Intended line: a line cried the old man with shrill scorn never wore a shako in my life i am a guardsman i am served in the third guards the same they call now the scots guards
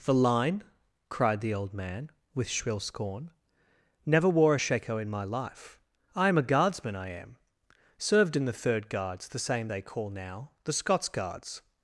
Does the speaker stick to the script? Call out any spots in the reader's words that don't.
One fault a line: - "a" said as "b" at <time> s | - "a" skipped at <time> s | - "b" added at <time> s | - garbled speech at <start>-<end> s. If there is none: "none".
- "a" said as "the" at 0.0 s